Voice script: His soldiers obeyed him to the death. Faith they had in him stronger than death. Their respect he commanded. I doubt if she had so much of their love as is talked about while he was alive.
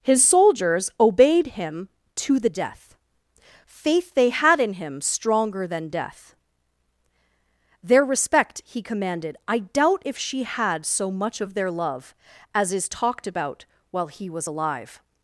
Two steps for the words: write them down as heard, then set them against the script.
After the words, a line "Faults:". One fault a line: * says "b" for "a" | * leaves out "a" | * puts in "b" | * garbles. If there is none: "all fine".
His soldiers obeyed him to the death. Faith they had in him stronger than death. Their respect he commanded. I doubt if she had so much of their love as is talked about while he was alive.
Faults:
all fine